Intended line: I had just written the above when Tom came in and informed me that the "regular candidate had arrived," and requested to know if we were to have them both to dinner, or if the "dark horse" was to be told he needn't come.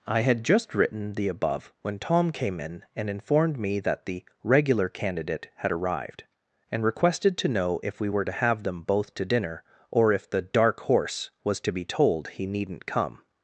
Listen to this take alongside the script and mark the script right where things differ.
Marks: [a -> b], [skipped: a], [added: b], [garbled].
I had just written the above when Tom came in and informed me that the "regular candidate had arrived," and requested to know if we were to have them both to dinner, or if the "dark horse" was to be told he needn't come.